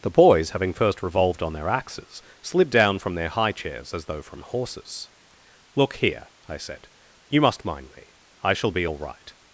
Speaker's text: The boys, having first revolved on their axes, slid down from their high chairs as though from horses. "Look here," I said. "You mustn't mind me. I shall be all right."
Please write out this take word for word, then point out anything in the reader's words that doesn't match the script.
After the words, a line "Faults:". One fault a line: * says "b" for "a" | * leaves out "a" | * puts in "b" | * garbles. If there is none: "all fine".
The boys, having first revolved on their axes, slid down from their high chairs as though from horses. "Look here," I said. "You must mind me. I shall be all right."
Faults:
* says "must" for "mustn't"